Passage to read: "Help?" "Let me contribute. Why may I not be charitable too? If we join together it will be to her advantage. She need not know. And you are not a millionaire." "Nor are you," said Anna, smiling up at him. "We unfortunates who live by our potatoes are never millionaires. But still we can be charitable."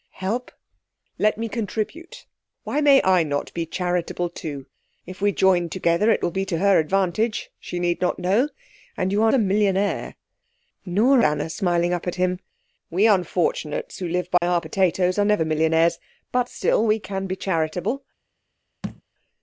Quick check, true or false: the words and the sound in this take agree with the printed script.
false